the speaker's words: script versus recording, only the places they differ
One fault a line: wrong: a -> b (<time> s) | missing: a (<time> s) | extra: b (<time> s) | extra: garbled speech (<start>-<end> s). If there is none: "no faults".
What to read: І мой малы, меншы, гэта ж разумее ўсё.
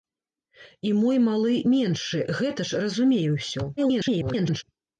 extra: garbled speech (3.8-4.6 s)